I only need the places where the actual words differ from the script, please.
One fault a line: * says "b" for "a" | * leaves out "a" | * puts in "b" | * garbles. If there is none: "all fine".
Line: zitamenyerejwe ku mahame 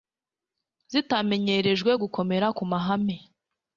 * puts in "gukomera"